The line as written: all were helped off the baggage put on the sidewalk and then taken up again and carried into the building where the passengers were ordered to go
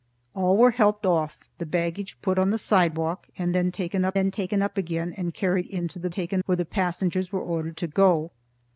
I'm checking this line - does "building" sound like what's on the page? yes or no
no